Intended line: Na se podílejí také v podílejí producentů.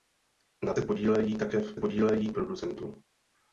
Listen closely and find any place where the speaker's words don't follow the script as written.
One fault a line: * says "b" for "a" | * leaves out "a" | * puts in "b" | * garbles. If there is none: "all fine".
all fine